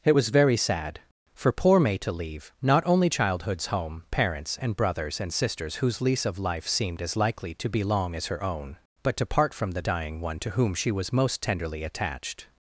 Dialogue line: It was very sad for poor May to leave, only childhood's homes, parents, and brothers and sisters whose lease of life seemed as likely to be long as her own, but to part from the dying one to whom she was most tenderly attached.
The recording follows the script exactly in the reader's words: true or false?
false